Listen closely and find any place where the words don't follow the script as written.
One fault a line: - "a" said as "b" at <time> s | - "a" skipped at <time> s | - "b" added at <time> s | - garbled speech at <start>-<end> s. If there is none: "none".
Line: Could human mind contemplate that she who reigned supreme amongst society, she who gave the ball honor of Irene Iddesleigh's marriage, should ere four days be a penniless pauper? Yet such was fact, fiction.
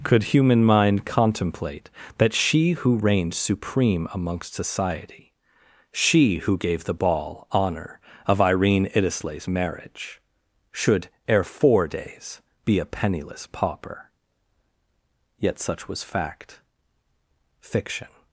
none